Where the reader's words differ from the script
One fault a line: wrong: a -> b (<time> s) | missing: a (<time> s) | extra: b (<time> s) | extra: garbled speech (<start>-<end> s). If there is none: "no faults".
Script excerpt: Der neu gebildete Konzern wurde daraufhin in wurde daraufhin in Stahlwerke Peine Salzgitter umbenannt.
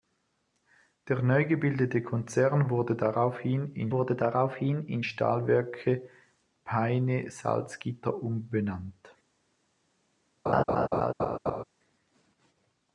no faults